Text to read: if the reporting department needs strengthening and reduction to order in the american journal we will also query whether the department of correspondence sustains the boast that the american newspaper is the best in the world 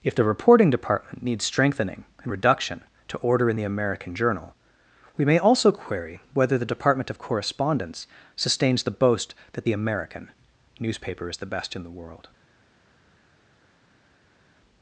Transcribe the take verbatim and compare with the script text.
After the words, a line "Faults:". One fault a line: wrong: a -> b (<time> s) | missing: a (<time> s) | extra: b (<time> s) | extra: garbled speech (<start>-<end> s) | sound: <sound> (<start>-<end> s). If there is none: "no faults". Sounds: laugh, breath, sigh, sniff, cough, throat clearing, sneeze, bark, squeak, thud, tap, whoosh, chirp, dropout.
if the reporting department needs strengthening and reduction to order in the american journal we may also query whether the department of correspondence sustains the boast that the american newspaper is the best in the world
Faults:
wrong: will -> may (5.2 s)